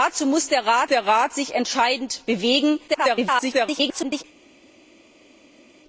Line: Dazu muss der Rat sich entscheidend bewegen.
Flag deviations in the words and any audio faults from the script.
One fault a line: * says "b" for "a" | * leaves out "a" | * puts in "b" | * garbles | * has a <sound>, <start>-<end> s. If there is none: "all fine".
* puts in "der Rat"
* garbles